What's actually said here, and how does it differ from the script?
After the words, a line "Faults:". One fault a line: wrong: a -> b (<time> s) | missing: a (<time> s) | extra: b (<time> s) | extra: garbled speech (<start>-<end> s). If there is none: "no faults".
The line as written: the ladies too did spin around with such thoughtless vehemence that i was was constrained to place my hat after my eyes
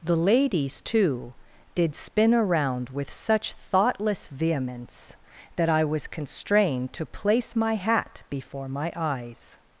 the ladies too did spin around with such thoughtless vehemence that i was constrained to place my hat before my eyes
Faults:
missing: was (6.1 s)
wrong: after -> before (8.3 s)